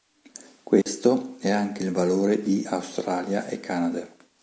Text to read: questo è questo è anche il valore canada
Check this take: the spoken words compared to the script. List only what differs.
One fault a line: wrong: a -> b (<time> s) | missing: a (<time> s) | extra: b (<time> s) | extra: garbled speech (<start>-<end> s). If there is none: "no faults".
missing: questo è (1.5 s)
extra: di australia e (2.4 s)